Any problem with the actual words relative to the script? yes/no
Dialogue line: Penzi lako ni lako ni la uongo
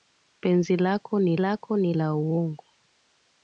no